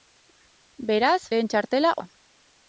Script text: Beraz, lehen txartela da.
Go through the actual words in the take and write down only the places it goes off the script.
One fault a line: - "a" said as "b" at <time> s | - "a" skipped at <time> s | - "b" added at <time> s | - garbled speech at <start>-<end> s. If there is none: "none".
none